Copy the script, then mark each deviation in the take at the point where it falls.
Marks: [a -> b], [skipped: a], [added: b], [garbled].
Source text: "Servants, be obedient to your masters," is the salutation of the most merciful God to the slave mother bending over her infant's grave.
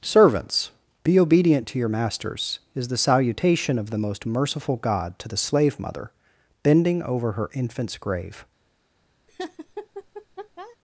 "Servants, be obedient to your masters," is the salutation of the most merciful God to the slave mother bending over her infant's grave.